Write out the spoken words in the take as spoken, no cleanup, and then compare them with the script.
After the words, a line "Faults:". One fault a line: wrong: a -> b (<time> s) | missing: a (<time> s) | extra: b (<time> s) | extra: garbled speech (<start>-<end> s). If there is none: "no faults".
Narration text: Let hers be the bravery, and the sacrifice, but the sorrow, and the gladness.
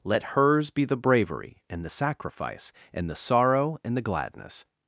Let hers be the bravery, and the sacrifice, and the sorrow, and the gladness.
Faults:
wrong: but -> and (2.9 s)